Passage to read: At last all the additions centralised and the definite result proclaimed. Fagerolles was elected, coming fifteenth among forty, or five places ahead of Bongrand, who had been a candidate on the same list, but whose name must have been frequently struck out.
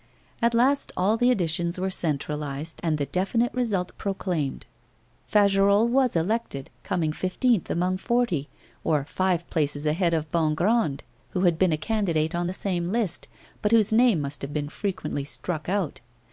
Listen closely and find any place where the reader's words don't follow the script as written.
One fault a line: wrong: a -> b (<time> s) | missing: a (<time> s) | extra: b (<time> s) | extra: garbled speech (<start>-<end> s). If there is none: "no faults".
extra: were (1.8 s)